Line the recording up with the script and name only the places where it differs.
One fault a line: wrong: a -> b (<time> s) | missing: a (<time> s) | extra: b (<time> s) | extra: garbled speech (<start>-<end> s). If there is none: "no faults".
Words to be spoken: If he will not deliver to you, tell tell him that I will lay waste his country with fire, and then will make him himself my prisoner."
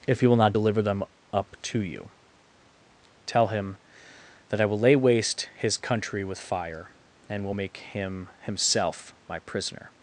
extra: them up (0.8 s)
missing: tell (3.5 s)
missing: then (7.4 s)